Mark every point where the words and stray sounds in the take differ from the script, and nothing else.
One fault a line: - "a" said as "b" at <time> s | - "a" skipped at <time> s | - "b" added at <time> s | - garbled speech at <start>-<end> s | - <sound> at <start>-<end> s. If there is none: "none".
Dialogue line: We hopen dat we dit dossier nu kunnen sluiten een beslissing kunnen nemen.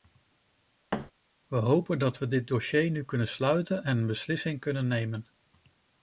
- thud at 0.9-1.1 s
- "en" added at 3.8 s